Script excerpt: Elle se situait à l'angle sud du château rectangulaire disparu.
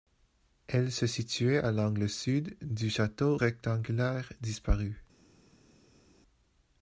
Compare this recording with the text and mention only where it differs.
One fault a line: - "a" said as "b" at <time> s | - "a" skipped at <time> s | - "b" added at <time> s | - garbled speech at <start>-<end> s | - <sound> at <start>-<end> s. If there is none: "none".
none